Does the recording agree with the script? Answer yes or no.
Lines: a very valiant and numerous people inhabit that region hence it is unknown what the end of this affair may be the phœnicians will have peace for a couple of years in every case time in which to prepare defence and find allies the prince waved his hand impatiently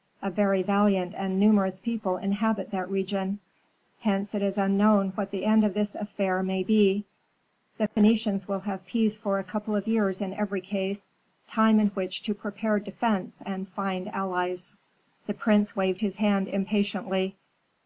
yes